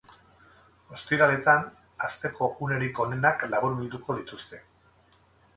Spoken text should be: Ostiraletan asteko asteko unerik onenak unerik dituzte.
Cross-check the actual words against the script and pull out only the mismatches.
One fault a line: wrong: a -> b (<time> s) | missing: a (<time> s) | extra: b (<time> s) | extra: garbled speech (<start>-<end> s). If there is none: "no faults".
missing: asteko (2.5 s)
wrong: unerik -> laburbilduko (3.5 s)